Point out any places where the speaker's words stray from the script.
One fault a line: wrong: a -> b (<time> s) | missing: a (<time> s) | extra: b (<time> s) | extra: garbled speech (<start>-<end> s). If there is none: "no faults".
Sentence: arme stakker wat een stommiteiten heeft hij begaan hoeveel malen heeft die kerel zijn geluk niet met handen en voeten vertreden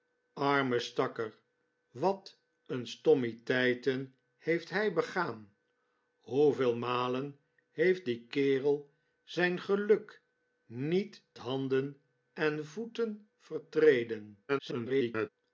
missing: met (11.2 s)
extra: garbled speech (14.5-15.3 s)